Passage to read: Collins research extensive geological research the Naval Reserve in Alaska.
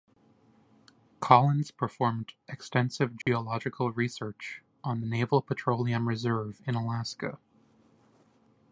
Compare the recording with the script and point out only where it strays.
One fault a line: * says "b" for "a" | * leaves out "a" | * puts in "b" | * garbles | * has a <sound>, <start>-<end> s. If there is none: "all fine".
* says "performed" for "research"
* has a dropout, 3.2-3.3 s
* puts in "on"
* puts in "Petroleum"